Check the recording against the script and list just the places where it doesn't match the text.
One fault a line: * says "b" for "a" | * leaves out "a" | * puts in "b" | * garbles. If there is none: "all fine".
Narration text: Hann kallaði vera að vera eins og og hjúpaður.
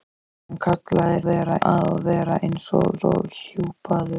all fine